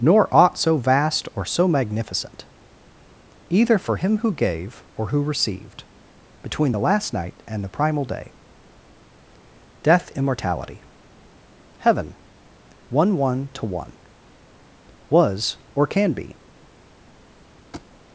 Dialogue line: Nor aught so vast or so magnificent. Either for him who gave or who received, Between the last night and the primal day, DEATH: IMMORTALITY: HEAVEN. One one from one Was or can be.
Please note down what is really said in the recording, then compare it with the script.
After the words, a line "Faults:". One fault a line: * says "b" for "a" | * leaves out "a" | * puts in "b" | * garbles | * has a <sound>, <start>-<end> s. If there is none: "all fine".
Nor aught so vast or so magnificent. Either for him who gave or who received, Between the last night and the primal day, DEATH: IMMORTALITY: HEAVEN. One one to one Was or can be.
Faults:
* says "to" for "from"
* has a thud, 17.7-17.9 s